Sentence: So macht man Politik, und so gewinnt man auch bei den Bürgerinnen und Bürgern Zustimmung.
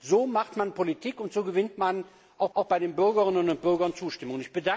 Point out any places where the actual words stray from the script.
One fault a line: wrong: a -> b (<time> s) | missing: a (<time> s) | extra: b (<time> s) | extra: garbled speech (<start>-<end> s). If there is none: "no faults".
extra: auch (2.5 s)